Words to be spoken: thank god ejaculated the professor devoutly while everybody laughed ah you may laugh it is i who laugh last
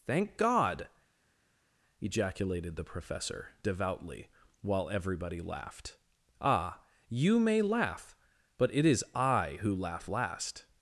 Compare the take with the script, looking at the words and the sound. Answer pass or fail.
fail